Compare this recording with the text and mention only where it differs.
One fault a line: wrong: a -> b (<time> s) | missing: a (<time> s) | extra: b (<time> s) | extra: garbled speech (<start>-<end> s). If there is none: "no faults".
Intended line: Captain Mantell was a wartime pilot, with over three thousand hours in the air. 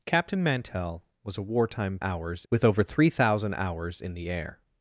wrong: pilot -> hours (2.0 s)